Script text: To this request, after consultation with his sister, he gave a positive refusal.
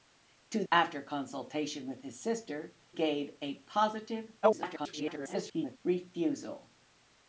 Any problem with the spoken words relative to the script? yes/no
yes